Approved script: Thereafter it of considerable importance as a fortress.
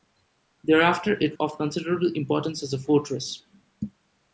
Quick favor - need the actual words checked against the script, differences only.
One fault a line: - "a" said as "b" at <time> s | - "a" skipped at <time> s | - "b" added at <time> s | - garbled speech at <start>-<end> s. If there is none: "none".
none